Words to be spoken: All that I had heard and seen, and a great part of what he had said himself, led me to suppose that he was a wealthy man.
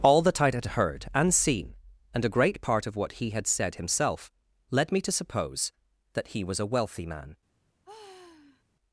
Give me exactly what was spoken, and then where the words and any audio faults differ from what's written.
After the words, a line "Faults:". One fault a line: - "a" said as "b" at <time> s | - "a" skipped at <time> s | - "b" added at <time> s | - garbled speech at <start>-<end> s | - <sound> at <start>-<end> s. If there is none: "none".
All that I had heard and seen, and a great part of what he had said himself, led me to suppose that he was a wealthy man.
Faults:
- sigh at 7.8-8.6 s